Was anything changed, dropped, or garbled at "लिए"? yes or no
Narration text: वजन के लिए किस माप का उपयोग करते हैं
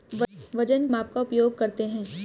yes